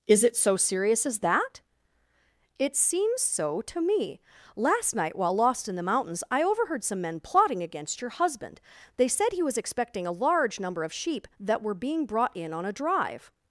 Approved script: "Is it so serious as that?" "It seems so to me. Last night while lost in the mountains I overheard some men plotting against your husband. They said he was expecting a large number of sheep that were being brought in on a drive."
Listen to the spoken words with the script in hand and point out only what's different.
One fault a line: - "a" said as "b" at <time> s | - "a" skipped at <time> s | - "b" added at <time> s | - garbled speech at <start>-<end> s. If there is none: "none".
none